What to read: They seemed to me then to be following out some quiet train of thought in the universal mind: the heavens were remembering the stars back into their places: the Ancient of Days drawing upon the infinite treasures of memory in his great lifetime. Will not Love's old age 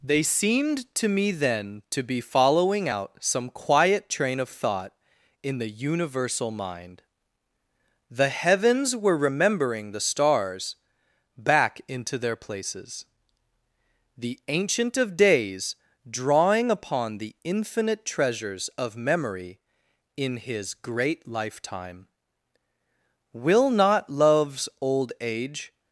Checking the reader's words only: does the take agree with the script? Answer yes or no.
yes